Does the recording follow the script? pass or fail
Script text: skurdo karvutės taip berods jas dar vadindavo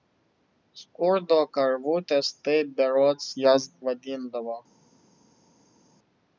fail